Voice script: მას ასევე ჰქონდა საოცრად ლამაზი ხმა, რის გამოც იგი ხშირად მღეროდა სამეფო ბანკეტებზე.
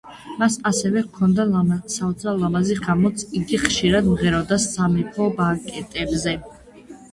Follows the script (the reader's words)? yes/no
no